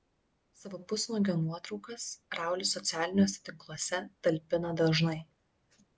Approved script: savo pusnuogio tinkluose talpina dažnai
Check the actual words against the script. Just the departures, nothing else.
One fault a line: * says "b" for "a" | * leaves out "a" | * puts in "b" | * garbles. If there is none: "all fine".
* puts in "nuotraukas raulis socialiniuose"